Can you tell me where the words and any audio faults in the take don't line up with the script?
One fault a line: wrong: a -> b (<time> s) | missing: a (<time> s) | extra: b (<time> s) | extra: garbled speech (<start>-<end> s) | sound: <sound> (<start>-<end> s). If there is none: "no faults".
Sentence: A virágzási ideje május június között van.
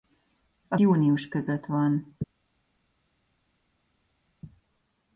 missing: virágzási ideje május (0.8 s)